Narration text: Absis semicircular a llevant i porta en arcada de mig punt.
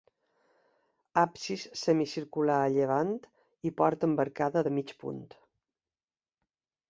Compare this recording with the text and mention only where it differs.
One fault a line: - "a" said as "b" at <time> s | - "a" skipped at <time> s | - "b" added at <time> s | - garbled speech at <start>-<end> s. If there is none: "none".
- "en" said as "amb" at 4.1 s